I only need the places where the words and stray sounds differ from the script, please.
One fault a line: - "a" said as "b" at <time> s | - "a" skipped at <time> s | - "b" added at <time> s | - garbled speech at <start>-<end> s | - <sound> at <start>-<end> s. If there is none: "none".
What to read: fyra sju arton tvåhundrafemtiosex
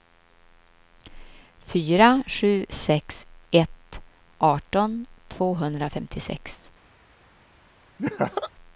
- "sex ett" added at 2.7 s
- laugh at 8.0-8.5 s